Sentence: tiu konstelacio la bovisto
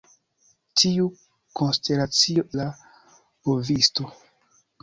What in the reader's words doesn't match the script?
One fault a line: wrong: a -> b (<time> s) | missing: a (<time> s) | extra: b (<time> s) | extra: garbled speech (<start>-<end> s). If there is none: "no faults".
no faults